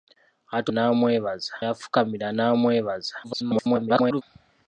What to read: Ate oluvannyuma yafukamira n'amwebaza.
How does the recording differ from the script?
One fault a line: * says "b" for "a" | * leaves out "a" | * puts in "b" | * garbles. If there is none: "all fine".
* says "n'amwebaza" for "oluvannyuma"
* garbles